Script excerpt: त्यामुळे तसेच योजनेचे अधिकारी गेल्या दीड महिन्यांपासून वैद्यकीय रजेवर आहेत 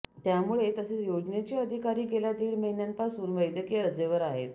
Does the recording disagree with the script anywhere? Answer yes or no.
no